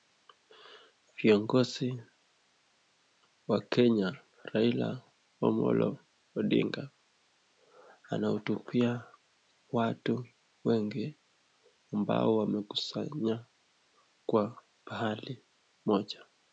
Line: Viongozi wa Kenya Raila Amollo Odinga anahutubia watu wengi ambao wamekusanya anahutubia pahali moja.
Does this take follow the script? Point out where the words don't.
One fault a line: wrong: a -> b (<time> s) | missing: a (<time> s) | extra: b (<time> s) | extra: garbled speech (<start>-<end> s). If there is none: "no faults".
wrong: anahutubia -> kwa (14.2 s)